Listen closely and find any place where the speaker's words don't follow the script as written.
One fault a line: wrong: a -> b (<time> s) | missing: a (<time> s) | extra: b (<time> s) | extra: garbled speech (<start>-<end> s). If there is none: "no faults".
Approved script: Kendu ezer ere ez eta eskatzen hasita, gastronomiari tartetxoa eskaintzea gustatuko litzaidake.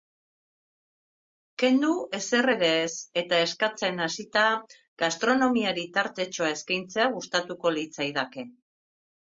no faults